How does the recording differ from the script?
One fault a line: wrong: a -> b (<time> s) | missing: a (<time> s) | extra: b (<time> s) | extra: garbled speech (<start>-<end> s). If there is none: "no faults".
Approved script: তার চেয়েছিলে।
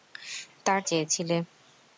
no faults